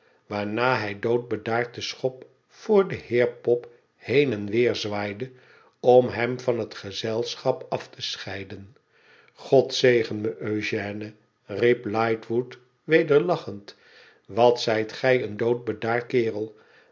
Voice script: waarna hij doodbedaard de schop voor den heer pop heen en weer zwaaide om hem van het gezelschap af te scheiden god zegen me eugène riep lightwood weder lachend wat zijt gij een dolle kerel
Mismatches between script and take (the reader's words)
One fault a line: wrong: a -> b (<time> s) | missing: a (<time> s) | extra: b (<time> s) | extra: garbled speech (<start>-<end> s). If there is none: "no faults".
wrong: dolle -> doodbedaard (15.4 s)